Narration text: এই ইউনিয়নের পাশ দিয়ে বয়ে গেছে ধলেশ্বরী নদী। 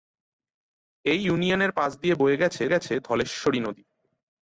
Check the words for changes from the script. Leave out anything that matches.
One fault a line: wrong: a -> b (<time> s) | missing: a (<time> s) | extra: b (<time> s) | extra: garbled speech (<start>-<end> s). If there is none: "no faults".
extra: গেছে (2.7 s)